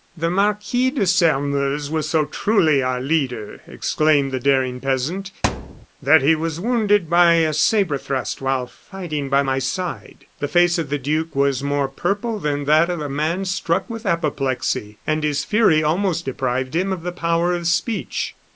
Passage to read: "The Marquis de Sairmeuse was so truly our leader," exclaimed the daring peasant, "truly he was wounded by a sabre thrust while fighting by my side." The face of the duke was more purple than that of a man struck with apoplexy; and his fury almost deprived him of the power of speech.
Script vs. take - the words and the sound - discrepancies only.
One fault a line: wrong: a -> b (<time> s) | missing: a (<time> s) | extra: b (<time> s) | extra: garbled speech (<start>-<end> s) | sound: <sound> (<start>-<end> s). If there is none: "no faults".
sound: thud (5.4-5.9 s)
wrong: truly -> that (6.0 s)